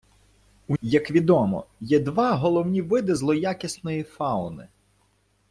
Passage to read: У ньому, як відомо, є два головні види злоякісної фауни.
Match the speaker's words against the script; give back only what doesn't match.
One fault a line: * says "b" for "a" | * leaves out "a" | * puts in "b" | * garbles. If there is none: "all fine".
* leaves out "ньому"